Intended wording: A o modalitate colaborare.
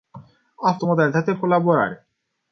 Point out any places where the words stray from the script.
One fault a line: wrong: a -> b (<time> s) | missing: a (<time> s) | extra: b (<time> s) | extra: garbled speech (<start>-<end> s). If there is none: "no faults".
no faults